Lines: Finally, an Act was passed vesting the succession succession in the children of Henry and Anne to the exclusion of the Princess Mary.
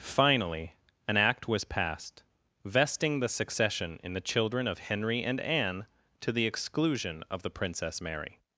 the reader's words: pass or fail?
fail